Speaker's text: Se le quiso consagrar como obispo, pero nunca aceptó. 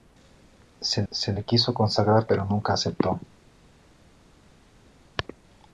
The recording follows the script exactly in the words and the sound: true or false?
false